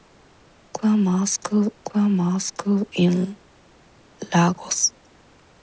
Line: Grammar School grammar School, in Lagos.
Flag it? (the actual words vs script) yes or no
no